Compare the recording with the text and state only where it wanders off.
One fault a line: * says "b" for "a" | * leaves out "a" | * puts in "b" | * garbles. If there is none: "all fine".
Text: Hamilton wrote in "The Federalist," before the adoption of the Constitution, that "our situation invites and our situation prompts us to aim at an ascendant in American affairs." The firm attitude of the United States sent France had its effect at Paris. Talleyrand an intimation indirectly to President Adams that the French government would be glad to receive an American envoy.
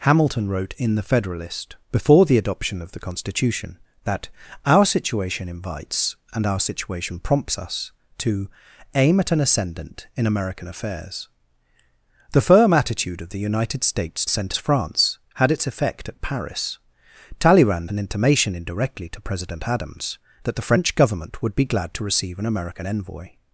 all fine